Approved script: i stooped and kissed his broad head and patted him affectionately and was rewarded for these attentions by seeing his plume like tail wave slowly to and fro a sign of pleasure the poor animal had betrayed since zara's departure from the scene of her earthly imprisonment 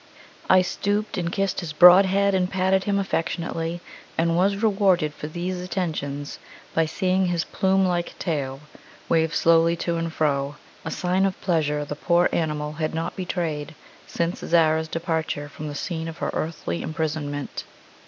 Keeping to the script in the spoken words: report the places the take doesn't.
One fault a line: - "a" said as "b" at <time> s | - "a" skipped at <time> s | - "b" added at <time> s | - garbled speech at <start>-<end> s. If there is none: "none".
- "not" added at 12.9 s